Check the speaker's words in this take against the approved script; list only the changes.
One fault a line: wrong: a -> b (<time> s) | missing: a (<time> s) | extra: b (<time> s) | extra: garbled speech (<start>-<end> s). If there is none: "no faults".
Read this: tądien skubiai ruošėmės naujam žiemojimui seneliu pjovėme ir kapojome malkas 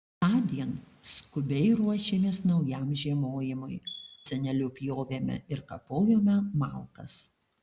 no faults